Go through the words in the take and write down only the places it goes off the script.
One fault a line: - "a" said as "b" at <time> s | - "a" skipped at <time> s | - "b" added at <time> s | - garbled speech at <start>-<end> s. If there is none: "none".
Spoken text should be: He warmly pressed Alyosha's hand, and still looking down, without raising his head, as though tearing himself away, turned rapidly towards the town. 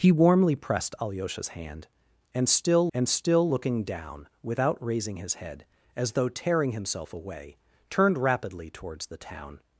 - "and still" added at 2.9 s